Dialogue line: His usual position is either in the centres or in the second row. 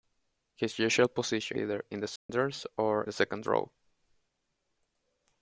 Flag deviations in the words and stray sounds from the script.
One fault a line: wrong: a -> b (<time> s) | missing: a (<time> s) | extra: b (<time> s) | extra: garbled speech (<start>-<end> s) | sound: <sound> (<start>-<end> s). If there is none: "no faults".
missing: is (1.6 s)
sound: dropout (2.2-2.3 s)
missing: in (3.0 s)